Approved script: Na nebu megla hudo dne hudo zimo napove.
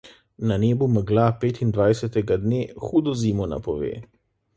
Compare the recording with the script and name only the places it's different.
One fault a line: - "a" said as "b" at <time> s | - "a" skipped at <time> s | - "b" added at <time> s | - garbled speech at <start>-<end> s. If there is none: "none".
- "hudo" said as "petindvajsetega" at 1.4 s